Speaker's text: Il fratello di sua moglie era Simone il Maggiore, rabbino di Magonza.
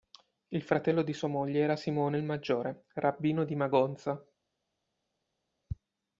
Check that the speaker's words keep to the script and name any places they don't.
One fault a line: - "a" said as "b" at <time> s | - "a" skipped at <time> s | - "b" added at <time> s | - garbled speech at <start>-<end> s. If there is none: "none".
none